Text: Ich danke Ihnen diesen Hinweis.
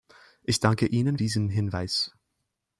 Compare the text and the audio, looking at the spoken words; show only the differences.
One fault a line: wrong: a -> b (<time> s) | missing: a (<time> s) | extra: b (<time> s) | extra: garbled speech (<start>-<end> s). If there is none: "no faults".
no faults